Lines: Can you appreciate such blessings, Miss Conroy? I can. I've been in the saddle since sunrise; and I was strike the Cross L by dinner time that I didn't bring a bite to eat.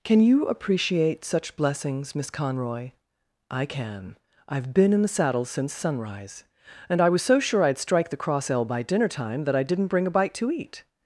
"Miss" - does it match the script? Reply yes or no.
yes